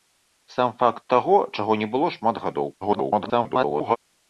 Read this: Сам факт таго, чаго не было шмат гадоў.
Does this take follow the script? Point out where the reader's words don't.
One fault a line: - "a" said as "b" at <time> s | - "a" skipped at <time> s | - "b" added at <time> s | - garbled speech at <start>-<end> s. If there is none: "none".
- garbled speech at 2.8-4.0 s